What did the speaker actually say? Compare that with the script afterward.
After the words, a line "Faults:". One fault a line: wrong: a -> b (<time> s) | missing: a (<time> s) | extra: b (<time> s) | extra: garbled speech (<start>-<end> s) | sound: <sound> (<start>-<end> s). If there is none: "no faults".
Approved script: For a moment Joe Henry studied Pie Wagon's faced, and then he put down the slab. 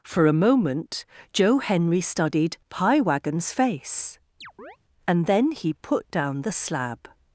For a moment Joe Henry studied Pie Wagon's face, and then he put down the slab.
Faults:
wrong: faced -> face (3.5 s)
sound: chirp (4.4-4.8 s)